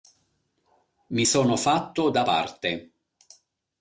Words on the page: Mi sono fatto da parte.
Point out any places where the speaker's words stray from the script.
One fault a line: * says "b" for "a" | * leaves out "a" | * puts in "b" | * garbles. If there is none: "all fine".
all fine